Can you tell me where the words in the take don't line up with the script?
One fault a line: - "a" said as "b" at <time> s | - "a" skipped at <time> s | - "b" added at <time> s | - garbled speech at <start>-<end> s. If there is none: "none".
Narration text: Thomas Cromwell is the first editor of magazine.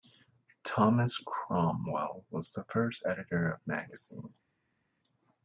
- "is" said as "was" at 2.3 s